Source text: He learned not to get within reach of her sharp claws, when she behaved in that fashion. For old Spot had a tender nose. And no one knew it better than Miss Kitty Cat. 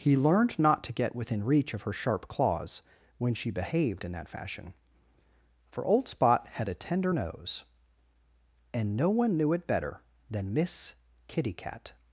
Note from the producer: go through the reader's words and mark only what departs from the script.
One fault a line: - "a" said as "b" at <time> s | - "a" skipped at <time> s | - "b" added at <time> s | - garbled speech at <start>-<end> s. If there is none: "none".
none